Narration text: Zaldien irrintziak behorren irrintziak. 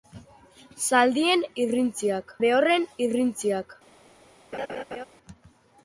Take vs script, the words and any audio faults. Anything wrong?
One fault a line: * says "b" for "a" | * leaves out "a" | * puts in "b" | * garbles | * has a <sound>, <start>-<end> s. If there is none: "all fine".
* has a laugh, 4.5-5.1 s